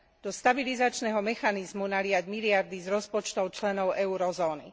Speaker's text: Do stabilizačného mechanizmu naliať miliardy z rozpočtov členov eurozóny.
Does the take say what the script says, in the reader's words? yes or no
yes